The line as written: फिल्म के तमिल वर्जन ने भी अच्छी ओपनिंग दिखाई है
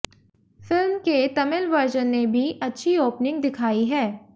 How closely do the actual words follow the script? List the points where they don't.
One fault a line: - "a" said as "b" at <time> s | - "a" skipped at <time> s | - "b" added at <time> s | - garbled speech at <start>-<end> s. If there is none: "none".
none